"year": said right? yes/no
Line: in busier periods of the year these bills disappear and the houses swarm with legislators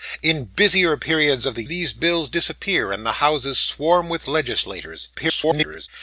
no